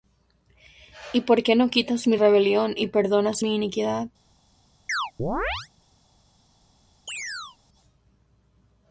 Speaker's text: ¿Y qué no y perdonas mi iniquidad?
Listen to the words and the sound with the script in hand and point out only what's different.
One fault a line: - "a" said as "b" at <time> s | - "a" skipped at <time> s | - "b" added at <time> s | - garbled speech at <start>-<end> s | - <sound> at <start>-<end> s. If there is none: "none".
- "por" added at 1.2 s
- "quitas mi rebelión" added at 1.7 s
- chirp at 4.9-5.7 s
- chirp at 7.1-7.6 s